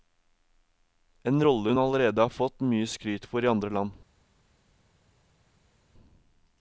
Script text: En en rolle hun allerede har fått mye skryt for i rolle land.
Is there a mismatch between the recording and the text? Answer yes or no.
yes